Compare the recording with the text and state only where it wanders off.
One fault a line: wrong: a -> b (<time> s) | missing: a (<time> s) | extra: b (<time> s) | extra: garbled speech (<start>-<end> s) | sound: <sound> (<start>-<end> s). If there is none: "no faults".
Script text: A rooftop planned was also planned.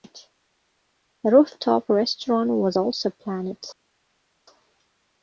wrong: planned -> restaurant (1.9 s)